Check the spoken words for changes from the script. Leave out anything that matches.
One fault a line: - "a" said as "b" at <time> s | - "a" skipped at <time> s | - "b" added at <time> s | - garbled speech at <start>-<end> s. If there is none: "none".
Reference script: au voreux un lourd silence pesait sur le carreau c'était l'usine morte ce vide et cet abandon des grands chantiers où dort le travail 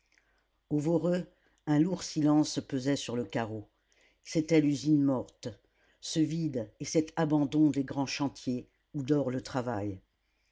none